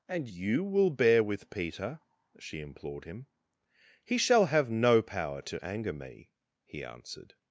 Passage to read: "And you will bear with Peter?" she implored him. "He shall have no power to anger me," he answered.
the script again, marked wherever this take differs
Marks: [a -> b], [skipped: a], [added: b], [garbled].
"And you will bear with Peter?" she implored him. "He shall have no power to anger me," he answered.